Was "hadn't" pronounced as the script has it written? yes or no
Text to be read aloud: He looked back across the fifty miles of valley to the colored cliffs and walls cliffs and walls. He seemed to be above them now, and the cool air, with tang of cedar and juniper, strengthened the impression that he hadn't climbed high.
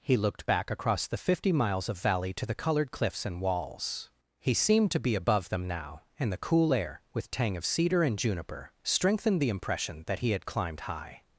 no